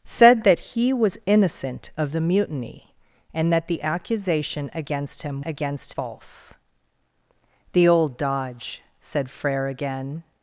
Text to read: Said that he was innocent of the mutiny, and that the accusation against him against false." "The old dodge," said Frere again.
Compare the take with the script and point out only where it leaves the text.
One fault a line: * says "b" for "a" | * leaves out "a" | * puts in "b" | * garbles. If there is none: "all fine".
all fine